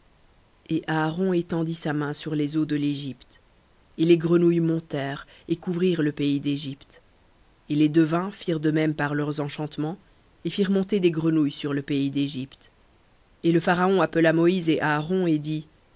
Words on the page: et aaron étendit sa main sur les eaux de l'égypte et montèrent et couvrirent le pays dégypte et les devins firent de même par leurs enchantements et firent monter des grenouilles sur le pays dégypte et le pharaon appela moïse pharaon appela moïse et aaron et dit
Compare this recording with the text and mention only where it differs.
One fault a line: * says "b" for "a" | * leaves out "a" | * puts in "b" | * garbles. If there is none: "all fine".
* puts in "les grenouilles"
* leaves out "pharaon appela moïse"